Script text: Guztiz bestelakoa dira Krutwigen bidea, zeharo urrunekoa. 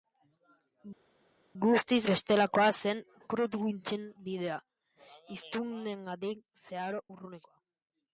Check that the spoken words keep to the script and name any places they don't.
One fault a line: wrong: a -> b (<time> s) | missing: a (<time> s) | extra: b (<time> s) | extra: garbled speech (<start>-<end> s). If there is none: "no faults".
wrong: dira -> zen (2.8 s)
extra: hiztunengandik (5.3 s)